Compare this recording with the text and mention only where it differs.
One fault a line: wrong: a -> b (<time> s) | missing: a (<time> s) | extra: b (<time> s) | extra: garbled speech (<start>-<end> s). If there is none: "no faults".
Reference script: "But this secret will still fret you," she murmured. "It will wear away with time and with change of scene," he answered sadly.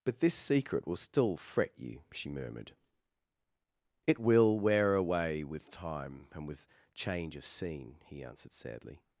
no faults